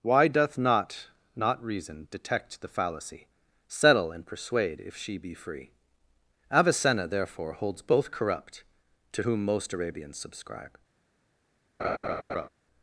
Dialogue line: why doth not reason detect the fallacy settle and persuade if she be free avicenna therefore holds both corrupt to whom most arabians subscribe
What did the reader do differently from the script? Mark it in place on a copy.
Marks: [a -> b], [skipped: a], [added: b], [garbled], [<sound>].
why doth not [added: not] reason detect the fallacy settle and persuade if she be free avicenna therefore holds both corrupt to whom most arabians subscribe [laugh]